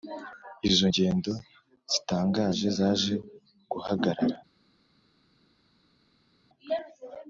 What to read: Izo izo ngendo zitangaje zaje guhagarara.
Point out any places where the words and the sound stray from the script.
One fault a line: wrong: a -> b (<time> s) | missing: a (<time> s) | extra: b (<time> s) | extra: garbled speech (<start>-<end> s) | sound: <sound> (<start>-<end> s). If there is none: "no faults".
missing: izo (0.8 s)